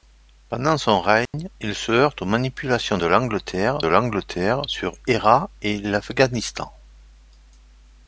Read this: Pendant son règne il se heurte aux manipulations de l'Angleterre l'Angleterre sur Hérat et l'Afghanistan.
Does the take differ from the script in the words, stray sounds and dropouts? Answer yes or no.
yes